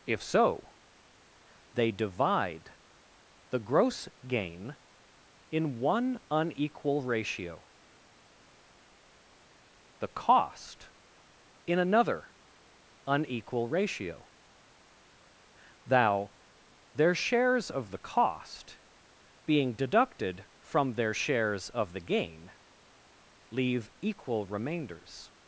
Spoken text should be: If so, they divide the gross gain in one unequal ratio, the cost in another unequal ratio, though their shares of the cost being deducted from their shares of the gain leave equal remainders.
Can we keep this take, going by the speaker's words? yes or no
no